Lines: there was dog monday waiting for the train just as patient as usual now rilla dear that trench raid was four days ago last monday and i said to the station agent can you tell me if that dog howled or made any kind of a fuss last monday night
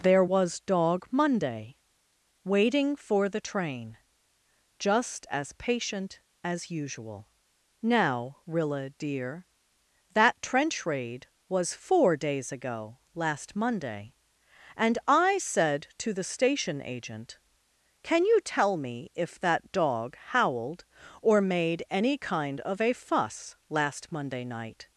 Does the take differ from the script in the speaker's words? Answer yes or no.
no